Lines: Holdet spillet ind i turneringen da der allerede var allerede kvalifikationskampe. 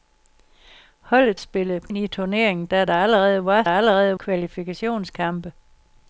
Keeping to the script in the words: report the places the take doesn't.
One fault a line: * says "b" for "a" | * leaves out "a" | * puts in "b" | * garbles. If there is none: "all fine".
all fine